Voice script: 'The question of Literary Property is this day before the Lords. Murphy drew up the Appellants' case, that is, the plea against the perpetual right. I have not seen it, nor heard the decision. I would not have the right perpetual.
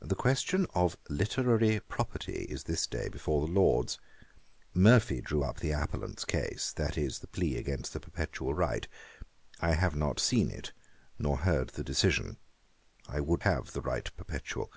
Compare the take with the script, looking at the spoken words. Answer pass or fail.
fail